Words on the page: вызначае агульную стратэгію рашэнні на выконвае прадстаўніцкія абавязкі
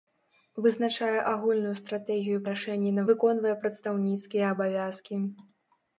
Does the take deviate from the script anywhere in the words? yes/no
no